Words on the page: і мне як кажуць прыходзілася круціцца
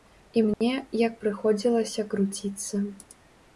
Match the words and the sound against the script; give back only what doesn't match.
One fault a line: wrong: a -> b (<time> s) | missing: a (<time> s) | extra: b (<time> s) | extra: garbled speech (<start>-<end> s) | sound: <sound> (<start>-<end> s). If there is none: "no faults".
sound: dropout (0.5-0.6 s)
missing: кажуць (1.2 s)